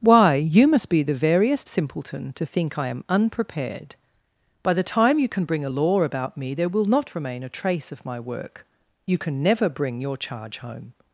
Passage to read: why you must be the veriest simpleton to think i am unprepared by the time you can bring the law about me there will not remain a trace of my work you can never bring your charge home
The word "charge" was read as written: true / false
true